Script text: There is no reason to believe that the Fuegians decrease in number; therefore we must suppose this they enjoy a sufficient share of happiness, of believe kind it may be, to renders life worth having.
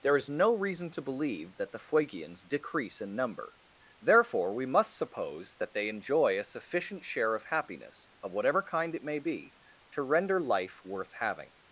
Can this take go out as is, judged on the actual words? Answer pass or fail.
fail